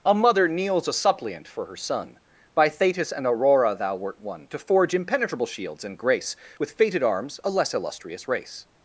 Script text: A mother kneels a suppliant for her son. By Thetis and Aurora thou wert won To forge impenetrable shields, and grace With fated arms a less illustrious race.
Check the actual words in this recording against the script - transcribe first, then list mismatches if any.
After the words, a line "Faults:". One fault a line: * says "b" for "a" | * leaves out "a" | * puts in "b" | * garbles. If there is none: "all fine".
A mother kneels a suppliant for her son. By Thetis and Aurora thou wert won To forge impenetrable shields, and grace With fated arms a less illustrious race.
Faults:
all fine